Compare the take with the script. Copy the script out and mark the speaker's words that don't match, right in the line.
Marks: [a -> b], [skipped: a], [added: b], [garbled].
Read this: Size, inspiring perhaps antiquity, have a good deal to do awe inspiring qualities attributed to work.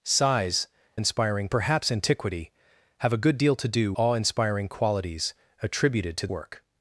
Size, inspiring perhaps antiquity, have a good deal to do awe inspiring qualities attributed to work.